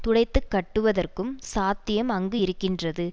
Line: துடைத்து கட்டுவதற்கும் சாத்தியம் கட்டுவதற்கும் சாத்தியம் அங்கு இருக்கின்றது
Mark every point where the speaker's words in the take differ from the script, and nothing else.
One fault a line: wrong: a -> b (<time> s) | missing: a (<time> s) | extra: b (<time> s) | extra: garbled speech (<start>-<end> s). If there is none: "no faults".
missing: கட்டுவதற்கும் சாத்தியம் (2.1 s)